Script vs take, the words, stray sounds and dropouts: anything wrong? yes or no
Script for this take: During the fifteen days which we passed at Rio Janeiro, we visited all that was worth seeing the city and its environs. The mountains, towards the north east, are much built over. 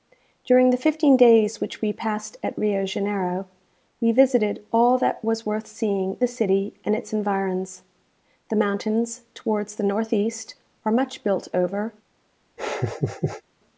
yes